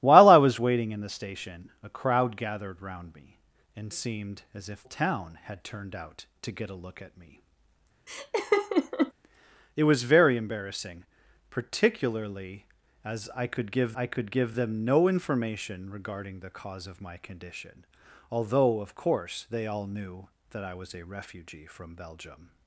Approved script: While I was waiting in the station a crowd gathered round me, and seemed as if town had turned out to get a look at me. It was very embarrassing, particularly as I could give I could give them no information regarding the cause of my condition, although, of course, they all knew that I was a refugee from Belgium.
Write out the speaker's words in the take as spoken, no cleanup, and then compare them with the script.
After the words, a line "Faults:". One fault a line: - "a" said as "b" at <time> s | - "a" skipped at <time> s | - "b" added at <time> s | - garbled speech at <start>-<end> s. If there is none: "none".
While I was waiting in the station a crowd gathered round me, and seemed as if town had turned out to get a look at me. It was very embarrassing, particularly as I could give I could give them no information regarding the cause of my condition, although, of course, they all knew that I was a refugee from Belgium.
Faults:
none